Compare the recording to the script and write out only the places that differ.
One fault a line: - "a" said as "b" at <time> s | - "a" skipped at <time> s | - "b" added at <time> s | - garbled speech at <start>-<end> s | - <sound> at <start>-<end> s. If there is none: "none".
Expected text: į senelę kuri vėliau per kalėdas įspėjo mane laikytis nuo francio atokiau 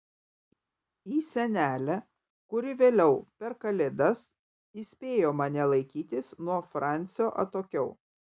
none